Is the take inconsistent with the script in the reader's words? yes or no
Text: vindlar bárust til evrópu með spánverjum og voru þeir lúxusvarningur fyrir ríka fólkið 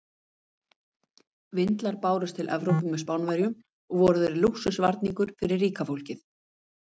no